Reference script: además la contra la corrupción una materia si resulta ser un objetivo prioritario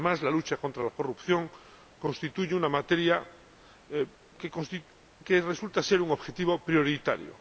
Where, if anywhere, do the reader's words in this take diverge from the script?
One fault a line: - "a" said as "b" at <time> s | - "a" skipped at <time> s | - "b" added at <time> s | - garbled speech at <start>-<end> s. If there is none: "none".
- "lucha" added at 0.3 s
- "constituye" added at 2.0 s
- "si" said as "que" at 5.2 s